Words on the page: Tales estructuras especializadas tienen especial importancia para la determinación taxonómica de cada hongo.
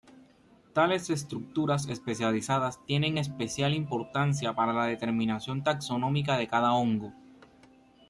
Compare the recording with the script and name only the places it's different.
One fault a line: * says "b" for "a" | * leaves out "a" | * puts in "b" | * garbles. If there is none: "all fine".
all fine